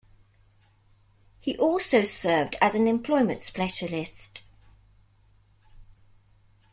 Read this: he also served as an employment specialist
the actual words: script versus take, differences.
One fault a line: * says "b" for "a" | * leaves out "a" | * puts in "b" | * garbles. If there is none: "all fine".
all fine